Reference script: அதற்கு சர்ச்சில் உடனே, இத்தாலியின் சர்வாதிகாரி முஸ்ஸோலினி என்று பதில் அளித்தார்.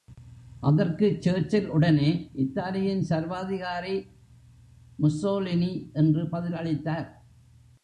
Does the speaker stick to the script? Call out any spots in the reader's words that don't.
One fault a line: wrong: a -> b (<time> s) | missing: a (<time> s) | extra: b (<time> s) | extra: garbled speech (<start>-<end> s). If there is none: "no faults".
no faults